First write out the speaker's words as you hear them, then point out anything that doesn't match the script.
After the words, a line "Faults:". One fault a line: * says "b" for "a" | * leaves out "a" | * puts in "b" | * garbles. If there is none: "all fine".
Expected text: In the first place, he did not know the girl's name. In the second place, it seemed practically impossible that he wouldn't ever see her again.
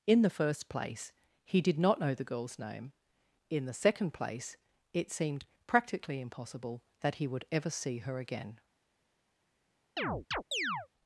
In the first place, he did not know the girl's name. In the second place, it seemed practically impossible that he would ever see her again.
Faults:
* says "would" for "wouldn't"